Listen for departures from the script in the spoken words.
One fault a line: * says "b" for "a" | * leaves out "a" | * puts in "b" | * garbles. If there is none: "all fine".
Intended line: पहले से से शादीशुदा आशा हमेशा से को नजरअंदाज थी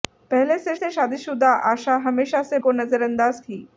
all fine